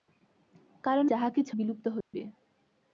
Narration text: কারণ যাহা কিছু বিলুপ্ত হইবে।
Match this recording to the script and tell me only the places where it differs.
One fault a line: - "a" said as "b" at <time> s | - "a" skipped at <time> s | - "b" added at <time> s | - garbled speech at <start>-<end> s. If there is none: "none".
none